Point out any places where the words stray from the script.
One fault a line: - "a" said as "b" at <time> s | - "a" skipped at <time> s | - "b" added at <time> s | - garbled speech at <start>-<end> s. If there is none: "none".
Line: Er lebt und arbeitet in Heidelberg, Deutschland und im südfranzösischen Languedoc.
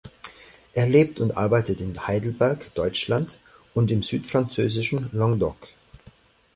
none